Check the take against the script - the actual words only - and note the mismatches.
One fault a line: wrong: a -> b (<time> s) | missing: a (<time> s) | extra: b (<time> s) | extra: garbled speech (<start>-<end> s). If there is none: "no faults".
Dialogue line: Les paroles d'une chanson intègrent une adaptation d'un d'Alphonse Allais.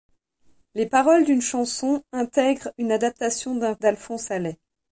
no faults